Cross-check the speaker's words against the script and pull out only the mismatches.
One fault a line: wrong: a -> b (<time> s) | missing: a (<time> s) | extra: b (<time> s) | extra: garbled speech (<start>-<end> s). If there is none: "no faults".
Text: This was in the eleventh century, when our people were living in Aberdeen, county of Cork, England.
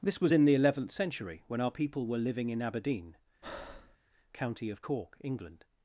no faults